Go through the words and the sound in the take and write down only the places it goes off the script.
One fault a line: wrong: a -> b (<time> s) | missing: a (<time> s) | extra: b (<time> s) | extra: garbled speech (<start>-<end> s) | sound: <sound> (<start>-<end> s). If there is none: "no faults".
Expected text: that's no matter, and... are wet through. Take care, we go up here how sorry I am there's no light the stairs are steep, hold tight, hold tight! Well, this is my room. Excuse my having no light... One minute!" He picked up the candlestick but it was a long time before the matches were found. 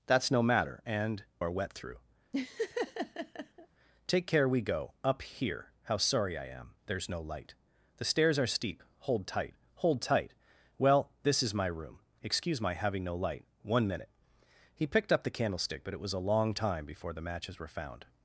sound: laugh (2.3-3.7 s)